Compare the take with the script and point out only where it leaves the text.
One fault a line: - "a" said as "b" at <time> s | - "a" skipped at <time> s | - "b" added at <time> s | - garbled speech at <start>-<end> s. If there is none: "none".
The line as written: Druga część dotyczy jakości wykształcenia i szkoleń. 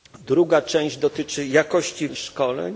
- "wykształcenia" skipped at 2.1 s